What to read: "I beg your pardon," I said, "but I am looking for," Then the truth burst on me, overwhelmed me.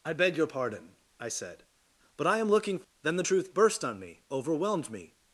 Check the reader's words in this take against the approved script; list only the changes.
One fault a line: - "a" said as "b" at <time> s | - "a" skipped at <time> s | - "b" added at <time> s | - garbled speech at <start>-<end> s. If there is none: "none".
- "for" skipped at 2.8 s